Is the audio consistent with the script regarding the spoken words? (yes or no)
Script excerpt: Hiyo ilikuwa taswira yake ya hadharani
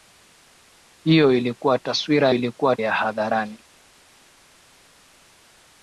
no